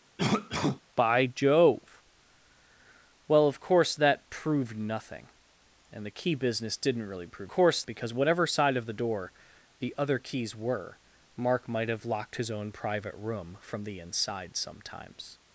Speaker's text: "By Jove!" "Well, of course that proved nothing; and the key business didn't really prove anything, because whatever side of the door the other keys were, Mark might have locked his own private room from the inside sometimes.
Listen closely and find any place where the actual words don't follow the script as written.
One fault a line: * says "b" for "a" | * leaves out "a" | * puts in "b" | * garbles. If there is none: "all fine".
* says "course" for "anything"